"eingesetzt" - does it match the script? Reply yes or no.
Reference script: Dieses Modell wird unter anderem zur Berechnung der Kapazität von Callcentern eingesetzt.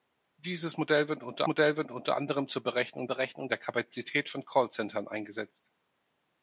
yes